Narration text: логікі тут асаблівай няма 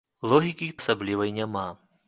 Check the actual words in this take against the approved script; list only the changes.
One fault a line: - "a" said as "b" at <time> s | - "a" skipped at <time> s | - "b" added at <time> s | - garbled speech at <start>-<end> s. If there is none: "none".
- "тут" skipped at 0.7 s